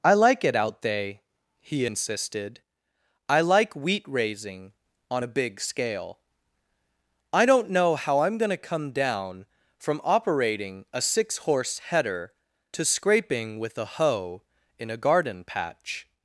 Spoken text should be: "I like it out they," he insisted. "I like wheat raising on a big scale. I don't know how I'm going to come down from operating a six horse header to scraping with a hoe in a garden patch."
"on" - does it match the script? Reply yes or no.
yes